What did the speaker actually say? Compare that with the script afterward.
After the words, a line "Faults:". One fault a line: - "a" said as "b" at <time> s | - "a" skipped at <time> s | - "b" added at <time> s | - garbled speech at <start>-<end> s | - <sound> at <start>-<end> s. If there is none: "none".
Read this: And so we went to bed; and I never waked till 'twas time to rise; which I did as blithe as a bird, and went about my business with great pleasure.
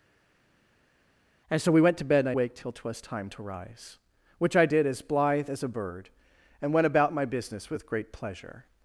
And so we went to bed; and I waked till 'twas time to rise; which I did as blithe as a bird, and went about my business with great pleasure.
Faults:
- "never" skipped at 2.3 s